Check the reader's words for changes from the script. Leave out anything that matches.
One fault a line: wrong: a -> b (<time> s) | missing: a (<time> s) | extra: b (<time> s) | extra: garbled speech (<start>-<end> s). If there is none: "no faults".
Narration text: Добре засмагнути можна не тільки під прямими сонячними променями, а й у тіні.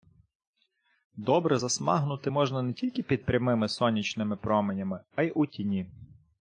no faults